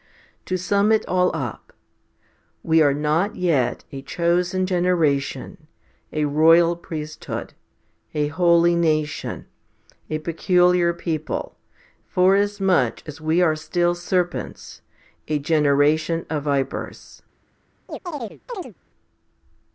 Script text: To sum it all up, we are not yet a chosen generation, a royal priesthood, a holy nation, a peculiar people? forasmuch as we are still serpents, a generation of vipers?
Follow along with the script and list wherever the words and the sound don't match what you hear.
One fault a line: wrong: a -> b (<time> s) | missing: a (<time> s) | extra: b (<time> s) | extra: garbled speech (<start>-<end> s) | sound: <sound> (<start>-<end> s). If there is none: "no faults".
sound: chirp (17.9-18.7 s)